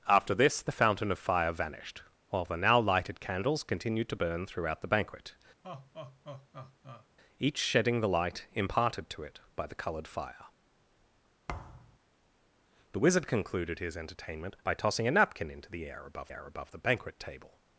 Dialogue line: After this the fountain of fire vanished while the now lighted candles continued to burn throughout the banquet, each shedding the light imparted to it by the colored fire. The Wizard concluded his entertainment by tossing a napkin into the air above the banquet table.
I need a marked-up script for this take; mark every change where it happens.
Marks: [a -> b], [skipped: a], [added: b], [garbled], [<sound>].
After this the fountain of fire vanished while the now lighted candles continued to burn throughout the banquet, [laugh] each shedding the light imparted to it by the colored fire. [thud] The Wizard concluded his entertainment by tossing a napkin into the air above [added: air above] the banquet table.